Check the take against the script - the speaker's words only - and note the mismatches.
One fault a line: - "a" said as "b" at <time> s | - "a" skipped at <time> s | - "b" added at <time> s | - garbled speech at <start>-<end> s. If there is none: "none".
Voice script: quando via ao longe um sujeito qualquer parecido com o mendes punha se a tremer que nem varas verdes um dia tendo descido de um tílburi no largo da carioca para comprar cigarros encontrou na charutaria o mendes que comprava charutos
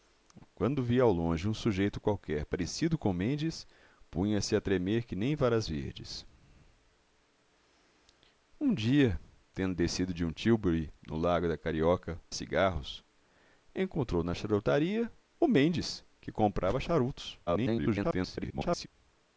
- "para comprar" skipped at 12.2 s
- garbled speech at 17.5-18.9 s